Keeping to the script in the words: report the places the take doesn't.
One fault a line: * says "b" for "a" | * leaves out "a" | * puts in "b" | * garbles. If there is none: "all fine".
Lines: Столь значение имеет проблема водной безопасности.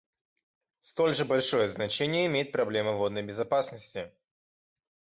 * puts in "же большое"